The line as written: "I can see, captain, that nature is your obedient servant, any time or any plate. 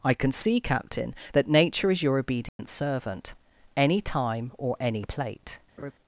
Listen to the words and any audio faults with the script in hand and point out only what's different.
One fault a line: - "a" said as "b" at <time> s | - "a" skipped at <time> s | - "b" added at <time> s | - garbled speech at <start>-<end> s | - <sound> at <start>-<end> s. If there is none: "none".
- dropout at 2.5-2.6 s
- laugh at 5.8-5.9 s